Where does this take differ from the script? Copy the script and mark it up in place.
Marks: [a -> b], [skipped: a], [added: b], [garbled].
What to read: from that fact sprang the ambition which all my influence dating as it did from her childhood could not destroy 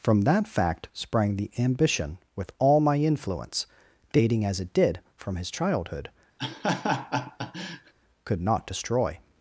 from that fact sprang the ambition [which -> with] all my influence dating as it did from [her -> his] childhood could not destroy